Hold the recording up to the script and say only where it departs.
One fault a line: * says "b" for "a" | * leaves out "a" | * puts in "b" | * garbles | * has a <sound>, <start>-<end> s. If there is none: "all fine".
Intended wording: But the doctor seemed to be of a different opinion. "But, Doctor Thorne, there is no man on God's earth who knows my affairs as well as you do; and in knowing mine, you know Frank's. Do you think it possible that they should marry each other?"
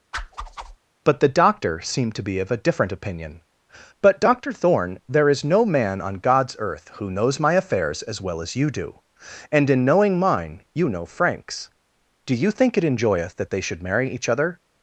* has a whoosh, 0.1-0.8 s
* says "enjoyeth" for "possible"